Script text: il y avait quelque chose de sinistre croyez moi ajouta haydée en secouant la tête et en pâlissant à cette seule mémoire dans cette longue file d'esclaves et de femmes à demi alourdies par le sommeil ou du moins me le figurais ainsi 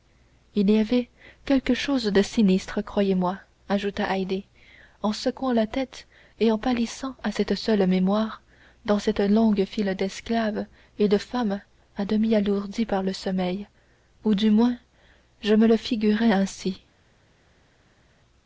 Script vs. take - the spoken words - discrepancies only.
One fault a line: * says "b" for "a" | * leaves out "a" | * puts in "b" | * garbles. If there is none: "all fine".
* puts in "je"